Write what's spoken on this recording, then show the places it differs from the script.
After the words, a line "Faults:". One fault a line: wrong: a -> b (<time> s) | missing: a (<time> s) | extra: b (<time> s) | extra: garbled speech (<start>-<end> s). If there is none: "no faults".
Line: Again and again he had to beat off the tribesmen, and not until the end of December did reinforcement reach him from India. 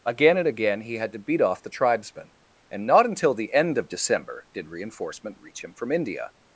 Again and again he had to beat off the tribesmen, and not until the end of December did reinforcement reach him from India.
Faults:
no faults